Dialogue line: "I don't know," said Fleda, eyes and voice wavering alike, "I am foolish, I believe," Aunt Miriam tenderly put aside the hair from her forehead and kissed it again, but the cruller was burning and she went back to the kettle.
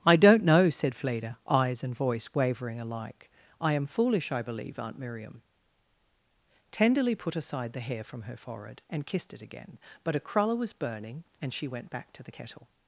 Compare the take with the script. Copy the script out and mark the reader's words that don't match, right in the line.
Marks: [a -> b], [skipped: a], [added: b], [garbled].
"I don't know," said Fleda, eyes and voice wavering alike, "I am foolish, I believe," Aunt Miriam tenderly put aside the hair from her forehead and kissed it again, but [the -> a] cruller was burning and she went back to the kettle.